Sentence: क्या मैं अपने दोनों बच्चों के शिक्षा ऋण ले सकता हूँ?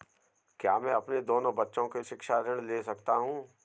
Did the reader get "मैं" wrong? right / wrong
right